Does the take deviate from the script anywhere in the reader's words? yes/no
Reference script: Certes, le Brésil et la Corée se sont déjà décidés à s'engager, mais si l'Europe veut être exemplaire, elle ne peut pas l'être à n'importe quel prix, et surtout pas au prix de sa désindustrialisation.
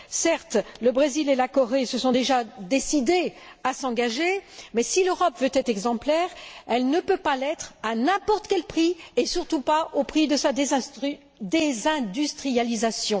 no